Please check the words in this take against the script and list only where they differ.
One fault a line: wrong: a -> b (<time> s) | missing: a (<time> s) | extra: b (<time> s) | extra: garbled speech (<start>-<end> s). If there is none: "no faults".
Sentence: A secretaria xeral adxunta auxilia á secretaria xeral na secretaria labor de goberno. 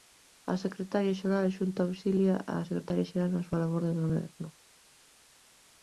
wrong: secretaria -> súa (3.5 s)